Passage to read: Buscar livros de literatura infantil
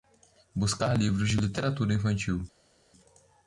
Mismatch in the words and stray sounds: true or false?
false